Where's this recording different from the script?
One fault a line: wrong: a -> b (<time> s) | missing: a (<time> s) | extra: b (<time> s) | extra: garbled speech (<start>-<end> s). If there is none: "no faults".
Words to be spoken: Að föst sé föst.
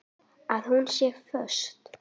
wrong: föst -> hún (0.7 s)